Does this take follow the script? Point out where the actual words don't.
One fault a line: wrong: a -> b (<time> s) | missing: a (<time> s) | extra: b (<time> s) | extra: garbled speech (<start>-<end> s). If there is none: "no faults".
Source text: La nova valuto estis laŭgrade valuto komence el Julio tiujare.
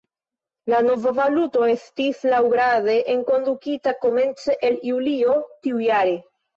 wrong: valuto -> enkondukita (3.2 s)